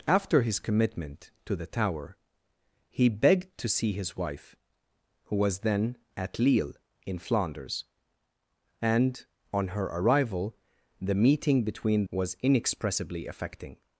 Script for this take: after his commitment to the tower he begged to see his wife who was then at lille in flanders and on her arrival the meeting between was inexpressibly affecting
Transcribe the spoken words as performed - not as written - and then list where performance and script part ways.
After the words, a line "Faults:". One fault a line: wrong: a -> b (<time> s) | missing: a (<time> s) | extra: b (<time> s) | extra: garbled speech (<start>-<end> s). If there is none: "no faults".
after his commitment to the tower he begged to see his wife who was then at lille in flanders and on her arrival the meeting between was inexpressibly affecting
Faults:
no faults